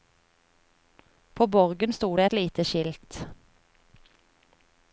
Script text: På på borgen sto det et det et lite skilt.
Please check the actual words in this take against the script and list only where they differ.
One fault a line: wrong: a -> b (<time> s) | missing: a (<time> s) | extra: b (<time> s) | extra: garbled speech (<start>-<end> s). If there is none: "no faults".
missing: på (1.5 s)
missing: det et (2.3 s)